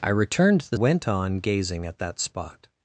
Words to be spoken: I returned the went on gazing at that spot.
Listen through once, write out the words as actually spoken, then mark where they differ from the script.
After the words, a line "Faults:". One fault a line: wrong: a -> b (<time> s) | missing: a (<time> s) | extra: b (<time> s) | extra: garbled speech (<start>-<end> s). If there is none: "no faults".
I returned the went on gazing at that spot.
Faults:
no faults